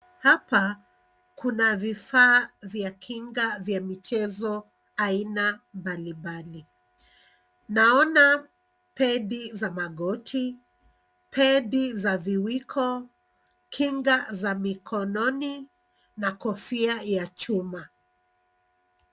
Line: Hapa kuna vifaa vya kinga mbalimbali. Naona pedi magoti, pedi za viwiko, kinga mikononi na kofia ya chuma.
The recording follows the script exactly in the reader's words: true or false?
false